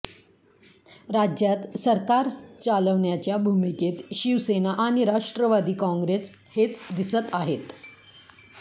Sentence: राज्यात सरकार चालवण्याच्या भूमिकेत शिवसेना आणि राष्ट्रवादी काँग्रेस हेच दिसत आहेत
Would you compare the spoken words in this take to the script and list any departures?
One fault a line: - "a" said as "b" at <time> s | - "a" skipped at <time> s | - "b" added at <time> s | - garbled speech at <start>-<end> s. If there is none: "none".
none